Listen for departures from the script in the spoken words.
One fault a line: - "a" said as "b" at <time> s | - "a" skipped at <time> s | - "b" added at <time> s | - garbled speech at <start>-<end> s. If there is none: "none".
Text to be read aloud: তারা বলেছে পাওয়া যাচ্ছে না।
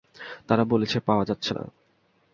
none